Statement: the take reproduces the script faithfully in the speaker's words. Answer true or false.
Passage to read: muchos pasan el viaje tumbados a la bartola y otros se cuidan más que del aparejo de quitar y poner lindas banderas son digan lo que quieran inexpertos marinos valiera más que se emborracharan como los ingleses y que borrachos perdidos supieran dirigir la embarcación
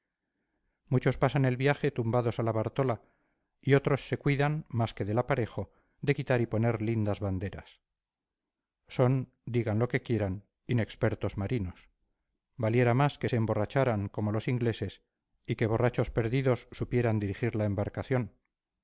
true